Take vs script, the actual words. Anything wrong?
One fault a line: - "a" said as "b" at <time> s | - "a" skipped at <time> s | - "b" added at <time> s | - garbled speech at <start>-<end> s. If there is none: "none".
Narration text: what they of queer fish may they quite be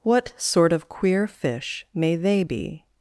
- "they" said as "sort" at 0.4 s
- "quite" skipped at 2.4 s